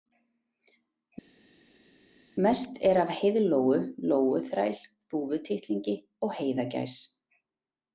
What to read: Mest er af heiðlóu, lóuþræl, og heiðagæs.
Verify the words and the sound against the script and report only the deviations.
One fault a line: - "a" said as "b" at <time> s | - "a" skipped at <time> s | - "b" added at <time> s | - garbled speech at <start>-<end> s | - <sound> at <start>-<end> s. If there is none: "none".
- "þúfutittlingi" added at 5.1 s